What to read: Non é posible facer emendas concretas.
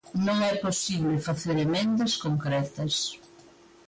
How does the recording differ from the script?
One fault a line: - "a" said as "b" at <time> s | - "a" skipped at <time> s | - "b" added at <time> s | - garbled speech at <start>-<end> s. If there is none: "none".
none